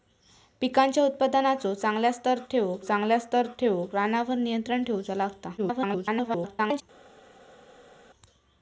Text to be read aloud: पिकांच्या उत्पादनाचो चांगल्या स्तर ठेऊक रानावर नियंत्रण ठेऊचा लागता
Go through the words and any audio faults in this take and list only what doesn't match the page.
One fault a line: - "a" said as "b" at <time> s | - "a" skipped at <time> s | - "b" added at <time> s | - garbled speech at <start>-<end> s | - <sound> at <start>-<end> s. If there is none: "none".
- "चांगल्या स्तर ठेऊक" added at 2.8 s
- garbled speech at 5.6-6.8 s